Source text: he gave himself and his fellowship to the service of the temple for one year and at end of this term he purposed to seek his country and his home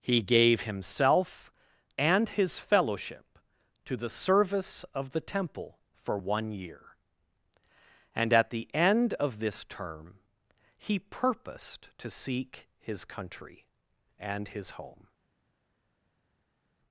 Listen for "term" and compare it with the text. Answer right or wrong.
right